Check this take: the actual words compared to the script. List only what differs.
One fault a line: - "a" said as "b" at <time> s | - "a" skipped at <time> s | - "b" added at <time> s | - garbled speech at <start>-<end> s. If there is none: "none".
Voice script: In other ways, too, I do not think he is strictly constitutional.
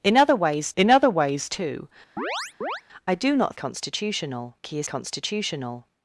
- "in other ways" added at 0.8 s
- "think" said as "constitutional" at 3.5 s
- "strictly" skipped at 4.9 s